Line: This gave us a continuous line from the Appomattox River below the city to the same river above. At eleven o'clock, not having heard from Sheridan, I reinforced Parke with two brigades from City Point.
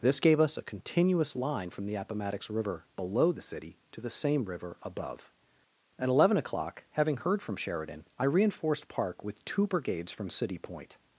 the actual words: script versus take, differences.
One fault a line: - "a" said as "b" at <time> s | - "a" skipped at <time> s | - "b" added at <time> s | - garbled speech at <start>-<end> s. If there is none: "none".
- "not" skipped at 6.8 s